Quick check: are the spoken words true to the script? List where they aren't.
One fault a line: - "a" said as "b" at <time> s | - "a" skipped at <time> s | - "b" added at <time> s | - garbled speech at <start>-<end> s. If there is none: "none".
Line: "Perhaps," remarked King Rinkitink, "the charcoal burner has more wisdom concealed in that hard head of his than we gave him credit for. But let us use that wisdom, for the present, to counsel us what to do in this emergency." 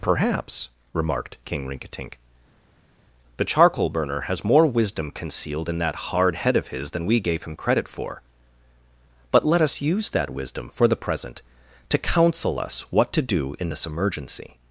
none